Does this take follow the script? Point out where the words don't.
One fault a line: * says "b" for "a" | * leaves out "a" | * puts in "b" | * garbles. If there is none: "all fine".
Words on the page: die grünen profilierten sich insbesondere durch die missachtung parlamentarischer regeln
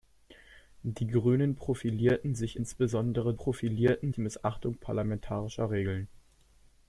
* says "profilierten" for "durch"